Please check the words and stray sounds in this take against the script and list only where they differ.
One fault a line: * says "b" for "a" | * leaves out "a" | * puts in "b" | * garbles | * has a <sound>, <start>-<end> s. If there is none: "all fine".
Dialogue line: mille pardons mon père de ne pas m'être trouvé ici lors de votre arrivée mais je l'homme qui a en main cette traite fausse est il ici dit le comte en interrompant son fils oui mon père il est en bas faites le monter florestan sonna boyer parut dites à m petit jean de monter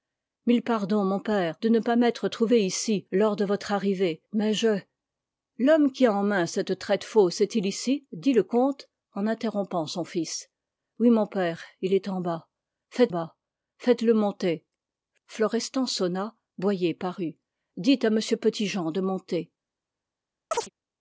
* puts in "bas faites"
* has a chirp, 20.5-20.7 s